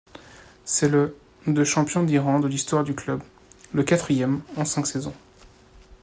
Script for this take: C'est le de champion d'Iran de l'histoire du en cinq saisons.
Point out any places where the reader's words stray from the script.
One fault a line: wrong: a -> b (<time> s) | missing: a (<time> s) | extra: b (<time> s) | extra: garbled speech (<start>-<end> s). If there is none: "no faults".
extra: club le quatrième (2.9 s)